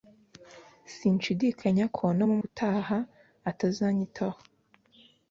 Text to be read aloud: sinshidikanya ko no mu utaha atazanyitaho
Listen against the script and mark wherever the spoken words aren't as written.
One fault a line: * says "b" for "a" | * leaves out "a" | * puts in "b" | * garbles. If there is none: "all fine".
all fine